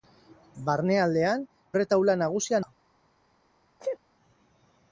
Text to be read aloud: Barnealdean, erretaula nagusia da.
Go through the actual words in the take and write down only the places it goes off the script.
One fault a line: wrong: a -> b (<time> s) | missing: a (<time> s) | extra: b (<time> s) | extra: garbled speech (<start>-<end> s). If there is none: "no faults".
no faults